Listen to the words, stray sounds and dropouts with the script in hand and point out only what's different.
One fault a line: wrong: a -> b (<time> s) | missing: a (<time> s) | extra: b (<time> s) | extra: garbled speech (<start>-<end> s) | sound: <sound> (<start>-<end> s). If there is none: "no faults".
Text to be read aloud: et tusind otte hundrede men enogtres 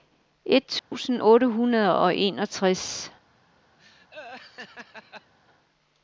sound: dropout (0.8-0.9 s)
wrong: men -> og (2.0 s)
sound: laugh (3.8-5.3 s)